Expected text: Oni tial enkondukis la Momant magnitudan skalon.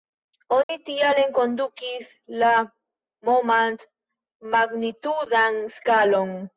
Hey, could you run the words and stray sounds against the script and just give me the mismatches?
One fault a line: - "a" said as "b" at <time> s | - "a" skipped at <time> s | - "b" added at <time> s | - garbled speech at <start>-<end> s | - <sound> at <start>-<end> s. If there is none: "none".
- dropout at 0.6-0.7 s